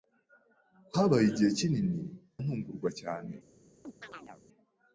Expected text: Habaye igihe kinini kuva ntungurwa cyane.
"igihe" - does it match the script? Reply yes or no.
yes